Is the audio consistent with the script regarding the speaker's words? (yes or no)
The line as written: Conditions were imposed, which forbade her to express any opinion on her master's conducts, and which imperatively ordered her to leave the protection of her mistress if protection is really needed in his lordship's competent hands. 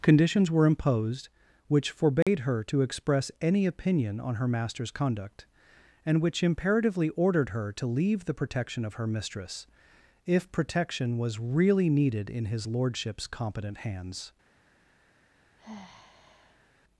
no